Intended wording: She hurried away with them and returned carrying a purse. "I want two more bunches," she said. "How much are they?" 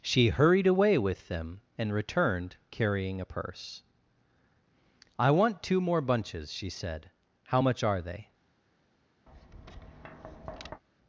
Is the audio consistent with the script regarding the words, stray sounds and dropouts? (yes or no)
no